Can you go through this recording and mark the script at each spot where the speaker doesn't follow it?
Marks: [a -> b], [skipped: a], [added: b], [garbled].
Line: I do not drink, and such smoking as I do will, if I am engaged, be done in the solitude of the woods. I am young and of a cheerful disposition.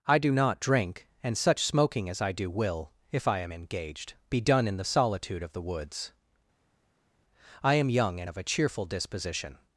I do not drink, and such smoking as I do will, if I am engaged, be done in the solitude of the woods. I am young and of a cheerful disposition.